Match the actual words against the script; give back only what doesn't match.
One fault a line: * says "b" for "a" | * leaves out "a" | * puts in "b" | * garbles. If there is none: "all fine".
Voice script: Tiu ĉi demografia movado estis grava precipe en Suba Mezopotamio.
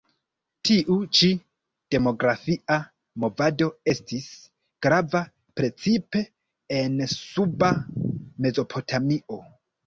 all fine